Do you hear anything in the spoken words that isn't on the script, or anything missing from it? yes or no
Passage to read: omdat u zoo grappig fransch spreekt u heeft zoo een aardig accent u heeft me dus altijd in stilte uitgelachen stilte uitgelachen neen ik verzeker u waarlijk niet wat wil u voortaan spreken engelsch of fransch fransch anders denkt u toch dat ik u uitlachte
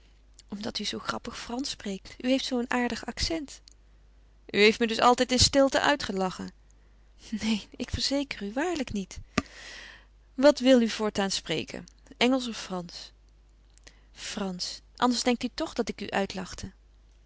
yes